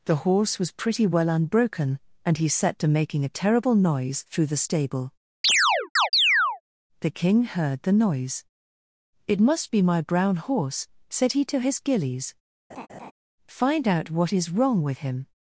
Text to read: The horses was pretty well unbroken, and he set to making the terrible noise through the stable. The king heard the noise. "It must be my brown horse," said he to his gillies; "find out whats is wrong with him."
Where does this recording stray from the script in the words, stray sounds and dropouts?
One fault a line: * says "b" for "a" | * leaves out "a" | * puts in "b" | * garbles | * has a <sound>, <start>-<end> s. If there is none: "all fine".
* says "horse" for "horses"
* says "a" for "the"
* has a chirp, 5.4-6.6 s
* has a laugh, 12.7-13.1 s
* says "what" for "whats"